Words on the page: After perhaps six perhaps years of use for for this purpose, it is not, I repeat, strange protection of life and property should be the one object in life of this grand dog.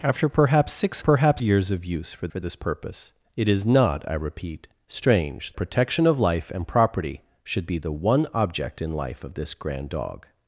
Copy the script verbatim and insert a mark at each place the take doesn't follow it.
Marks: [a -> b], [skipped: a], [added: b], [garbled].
After perhaps six perhaps years of use for for this purpose, it is not, I repeat, strange protection of life and property should be the one object in life of this grand dog.